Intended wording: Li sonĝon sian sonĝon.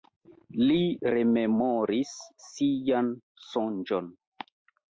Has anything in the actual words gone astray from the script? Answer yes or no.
yes